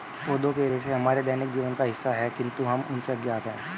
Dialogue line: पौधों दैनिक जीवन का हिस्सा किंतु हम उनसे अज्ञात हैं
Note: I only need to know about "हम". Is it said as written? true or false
true